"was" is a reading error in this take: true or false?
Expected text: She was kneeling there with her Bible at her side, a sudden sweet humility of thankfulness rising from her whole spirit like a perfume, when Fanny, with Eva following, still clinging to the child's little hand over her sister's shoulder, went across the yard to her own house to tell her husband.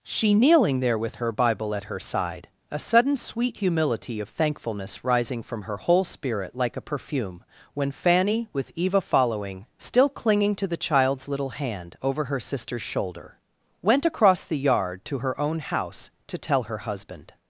true